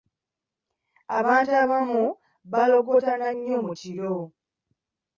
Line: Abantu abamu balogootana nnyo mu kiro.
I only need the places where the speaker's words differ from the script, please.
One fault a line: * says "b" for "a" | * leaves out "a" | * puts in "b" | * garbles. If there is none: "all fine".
all fine